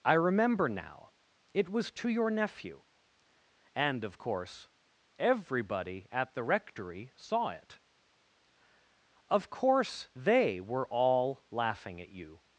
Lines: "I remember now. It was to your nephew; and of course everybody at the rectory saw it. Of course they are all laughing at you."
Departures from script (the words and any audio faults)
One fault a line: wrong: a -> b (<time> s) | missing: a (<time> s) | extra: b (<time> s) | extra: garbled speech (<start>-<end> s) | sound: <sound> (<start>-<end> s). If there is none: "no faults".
wrong: are -> were (10.6 s)